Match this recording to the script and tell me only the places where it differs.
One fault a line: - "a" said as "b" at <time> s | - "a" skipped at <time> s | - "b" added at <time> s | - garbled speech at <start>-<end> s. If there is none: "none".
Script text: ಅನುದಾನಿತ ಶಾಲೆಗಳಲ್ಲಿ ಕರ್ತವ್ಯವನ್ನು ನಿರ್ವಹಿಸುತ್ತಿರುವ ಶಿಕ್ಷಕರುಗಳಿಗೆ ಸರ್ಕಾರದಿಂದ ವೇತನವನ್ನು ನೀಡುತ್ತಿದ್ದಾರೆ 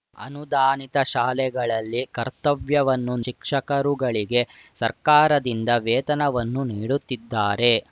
- "ನಿರ್ವಹಿಸುತ್ತಿರುವ" skipped at 3.1 s